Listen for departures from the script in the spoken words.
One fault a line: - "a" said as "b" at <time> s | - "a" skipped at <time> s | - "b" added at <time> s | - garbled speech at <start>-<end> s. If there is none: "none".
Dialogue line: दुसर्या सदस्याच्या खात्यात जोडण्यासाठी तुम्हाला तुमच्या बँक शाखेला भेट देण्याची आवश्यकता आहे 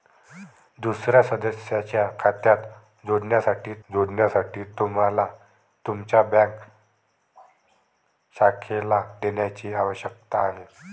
- "जोडण्यासाठी" added at 3.9 s
- "भेट" skipped at 9.0 s